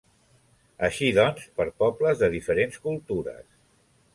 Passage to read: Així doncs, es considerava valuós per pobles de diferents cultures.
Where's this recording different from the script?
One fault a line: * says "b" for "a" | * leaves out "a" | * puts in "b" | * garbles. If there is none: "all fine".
* leaves out "es considerava valuós"